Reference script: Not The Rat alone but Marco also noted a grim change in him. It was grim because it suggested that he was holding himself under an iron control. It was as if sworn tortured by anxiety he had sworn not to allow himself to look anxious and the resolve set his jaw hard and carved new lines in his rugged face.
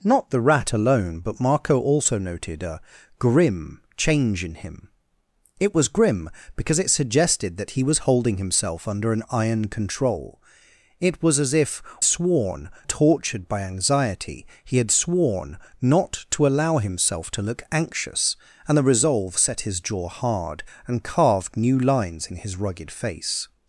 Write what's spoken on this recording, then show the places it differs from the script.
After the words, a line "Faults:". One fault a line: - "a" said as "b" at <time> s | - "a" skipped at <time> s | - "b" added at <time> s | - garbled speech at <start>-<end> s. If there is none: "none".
Not The Rat alone but Marco also noted a grim change in him. It was grim because it suggested that he was holding himself under an iron control. It was as if sworn tortured by anxiety he had sworn not to allow himself to look anxious and the resolve set his jaw hard and carved new lines in his rugged face.
Faults:
none